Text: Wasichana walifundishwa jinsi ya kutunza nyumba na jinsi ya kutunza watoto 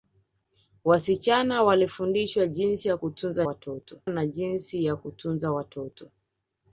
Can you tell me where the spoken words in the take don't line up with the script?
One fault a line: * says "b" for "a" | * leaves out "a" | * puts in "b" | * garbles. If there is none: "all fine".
* says "watoto" for "nyumba"